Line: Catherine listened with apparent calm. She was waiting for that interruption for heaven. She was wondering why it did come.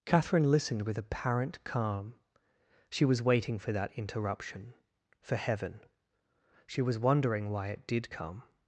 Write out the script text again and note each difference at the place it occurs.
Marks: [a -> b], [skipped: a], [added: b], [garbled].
Catherine listened with apparent calm. She was waiting for that interruption for heaven. She was wondering why it did come.